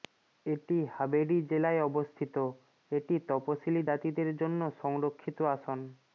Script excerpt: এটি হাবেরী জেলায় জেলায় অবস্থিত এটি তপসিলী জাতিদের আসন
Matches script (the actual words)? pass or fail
fail